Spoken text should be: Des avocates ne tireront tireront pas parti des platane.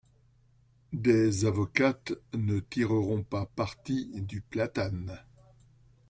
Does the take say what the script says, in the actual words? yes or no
no